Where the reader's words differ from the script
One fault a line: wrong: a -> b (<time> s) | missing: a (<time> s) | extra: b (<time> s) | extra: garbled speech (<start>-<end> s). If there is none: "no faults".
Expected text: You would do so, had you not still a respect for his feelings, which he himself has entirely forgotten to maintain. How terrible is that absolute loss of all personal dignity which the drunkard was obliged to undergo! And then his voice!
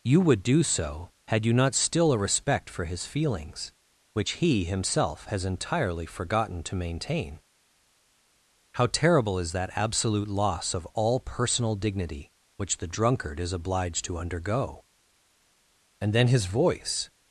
wrong: was -> is (13.4 s)